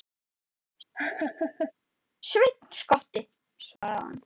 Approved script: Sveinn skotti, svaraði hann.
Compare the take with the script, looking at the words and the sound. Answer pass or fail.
fail